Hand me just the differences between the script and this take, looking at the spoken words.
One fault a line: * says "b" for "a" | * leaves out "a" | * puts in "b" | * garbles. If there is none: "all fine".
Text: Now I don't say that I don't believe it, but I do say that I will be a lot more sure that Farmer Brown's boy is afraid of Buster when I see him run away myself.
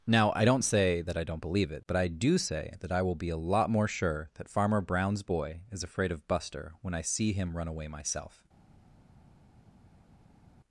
all fine